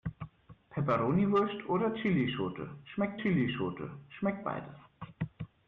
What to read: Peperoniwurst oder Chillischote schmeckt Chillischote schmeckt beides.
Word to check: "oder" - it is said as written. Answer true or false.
true